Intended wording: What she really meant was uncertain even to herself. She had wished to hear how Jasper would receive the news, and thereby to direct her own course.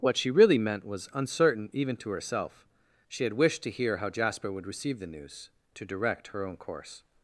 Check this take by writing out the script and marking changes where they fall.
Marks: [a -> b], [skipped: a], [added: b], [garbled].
What she really meant was uncertain even to herself. She had wished to hear how Jasper would receive the news, [skipped: and thereby] to direct her own course.